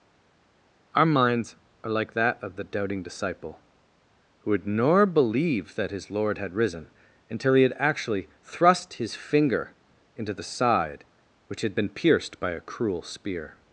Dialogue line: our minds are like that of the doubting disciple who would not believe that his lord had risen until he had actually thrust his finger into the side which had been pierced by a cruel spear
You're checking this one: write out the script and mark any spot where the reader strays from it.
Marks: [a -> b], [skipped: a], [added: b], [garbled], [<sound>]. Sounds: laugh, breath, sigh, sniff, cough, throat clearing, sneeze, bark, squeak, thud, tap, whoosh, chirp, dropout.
our minds are like that of the doubting disciple who would [not -> nor] believe that his lord had risen until he had actually thrust his finger into the side which had been pierced by a cruel spear